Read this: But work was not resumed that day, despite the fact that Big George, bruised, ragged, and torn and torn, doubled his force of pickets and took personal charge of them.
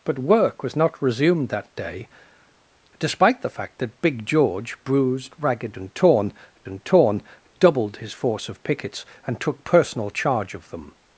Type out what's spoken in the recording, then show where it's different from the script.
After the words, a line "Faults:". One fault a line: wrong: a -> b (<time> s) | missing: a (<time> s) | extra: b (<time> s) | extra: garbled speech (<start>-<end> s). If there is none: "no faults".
But work was not resumed that day, despite the fact that Big George, bruised, ragged, and torn and torn, doubled his force of pickets and took personal charge of them.
Faults:
no faults